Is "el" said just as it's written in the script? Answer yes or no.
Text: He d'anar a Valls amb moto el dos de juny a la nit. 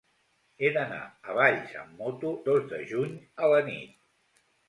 no